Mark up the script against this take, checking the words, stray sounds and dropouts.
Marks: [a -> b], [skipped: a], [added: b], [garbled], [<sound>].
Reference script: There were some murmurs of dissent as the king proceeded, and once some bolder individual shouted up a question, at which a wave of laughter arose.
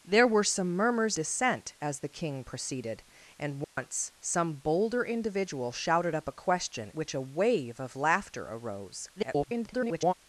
There were some murmurs [skipped: of] dissent as the king proceeded, and once [dropout] some bolder individual shouted up a question, [skipped: at] which a wave of laughter arose. [garbled]